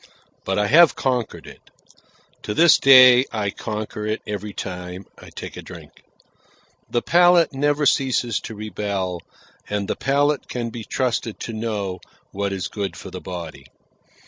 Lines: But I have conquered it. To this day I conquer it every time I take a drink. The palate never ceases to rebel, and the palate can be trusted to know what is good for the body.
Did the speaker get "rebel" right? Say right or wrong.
right